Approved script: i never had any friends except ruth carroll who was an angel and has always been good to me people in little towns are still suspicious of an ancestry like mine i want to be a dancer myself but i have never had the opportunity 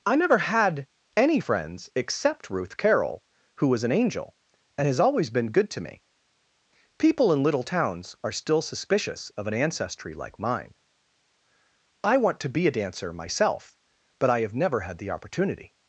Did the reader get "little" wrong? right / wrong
right